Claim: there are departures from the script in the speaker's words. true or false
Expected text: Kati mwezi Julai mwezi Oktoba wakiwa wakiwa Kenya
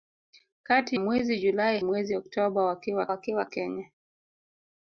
false